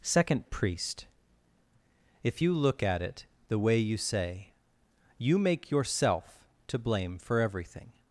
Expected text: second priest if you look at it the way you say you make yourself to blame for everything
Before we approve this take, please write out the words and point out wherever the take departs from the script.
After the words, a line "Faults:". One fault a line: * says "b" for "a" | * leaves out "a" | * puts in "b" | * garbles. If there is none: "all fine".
second priest if you look at it the way you say you make yourself to blame for everything
Faults:
all fine